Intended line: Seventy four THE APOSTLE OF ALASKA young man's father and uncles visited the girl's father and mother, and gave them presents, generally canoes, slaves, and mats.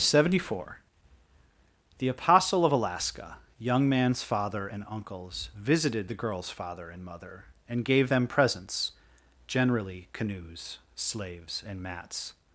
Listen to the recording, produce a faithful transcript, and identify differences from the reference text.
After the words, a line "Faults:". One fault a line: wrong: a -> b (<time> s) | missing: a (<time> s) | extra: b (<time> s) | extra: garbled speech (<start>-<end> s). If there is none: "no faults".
Seventy four THE APOSTLE OF ALASKA young man's father and uncles visited the girl's father and mother, and gave them presents, generally canoes, slaves, and mats.
Faults:
no faults